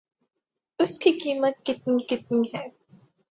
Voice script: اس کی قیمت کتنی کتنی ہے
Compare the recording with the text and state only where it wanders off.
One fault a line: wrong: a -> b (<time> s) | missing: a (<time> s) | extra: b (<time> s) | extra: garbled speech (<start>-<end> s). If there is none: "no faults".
no faults